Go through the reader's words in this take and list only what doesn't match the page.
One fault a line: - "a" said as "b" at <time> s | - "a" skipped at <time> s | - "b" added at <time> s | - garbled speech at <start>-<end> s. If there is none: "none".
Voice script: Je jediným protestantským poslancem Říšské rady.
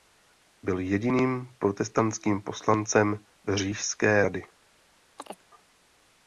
- "Je" said as "Byl" at 0.6 s